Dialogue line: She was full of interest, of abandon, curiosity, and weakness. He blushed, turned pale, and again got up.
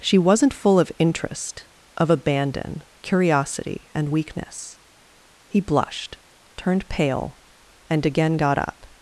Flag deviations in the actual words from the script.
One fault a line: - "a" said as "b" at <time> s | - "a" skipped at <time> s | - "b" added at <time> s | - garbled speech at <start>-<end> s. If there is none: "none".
- "was" said as "wasn't" at 0.2 s